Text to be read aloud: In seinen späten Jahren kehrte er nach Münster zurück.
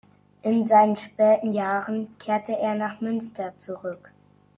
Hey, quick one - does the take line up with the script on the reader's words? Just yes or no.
yes